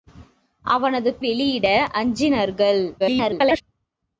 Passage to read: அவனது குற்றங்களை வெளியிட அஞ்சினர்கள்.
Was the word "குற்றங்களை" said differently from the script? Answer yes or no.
yes